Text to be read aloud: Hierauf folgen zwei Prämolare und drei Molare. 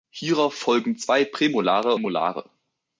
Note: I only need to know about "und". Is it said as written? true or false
false